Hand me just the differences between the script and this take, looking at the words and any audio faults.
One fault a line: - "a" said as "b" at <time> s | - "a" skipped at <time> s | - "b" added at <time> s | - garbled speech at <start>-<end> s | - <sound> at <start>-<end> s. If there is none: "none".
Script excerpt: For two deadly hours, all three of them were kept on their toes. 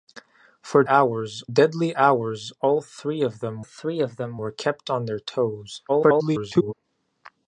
- "two" said as "hours" at 0.9 s
- "three of them" added at 3.6 s
- garbled speech at 5.9-6.7 s